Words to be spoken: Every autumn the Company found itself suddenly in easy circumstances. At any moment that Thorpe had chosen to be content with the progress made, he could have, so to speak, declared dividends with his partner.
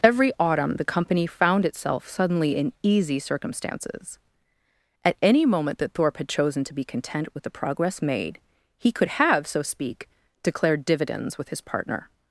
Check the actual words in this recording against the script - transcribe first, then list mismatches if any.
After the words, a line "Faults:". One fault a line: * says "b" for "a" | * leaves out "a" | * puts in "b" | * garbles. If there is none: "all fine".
Every autumn the Company found itself suddenly in easy circumstances. At any moment that Thorpe had chosen to be content with the progress made, he could have, so speak, declared dividends with his partner.
Faults:
* leaves out "to"